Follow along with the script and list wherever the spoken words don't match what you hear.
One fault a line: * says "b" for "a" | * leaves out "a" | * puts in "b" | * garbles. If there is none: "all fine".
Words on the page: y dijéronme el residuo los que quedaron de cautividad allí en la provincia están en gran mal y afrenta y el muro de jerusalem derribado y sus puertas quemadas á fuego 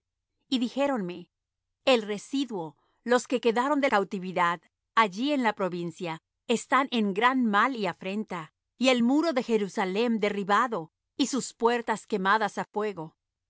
all fine